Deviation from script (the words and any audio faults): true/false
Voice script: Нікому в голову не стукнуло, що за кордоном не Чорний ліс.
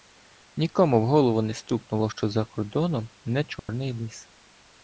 true